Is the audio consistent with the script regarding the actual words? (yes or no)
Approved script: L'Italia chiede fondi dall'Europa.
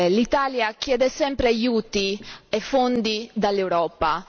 no